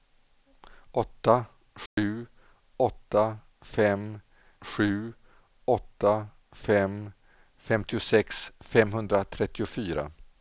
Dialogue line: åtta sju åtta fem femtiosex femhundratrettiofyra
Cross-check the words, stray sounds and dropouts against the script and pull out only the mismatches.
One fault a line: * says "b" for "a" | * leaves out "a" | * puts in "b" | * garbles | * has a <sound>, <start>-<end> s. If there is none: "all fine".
* has a dropout, 1.9-2.0 s
* puts in "sju åtta fem"